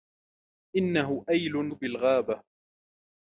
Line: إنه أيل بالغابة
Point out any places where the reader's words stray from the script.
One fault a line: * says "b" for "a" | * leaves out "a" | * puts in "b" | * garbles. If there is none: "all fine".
all fine